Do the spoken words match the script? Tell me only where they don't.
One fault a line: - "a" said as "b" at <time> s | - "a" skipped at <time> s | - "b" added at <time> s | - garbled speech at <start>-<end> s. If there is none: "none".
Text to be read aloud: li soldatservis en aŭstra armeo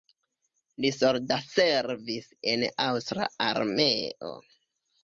none